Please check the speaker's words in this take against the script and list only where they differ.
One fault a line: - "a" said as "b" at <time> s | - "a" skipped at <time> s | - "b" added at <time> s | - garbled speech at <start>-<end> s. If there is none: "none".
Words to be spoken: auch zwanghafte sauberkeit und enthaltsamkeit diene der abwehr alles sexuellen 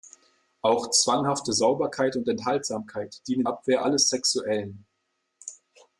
- "der" skipped at 3.4 s